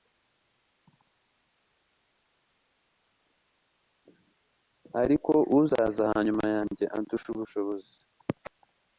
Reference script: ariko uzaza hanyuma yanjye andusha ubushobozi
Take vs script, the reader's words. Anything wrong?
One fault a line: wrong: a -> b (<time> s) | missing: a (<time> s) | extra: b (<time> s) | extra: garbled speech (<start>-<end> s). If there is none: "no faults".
no faults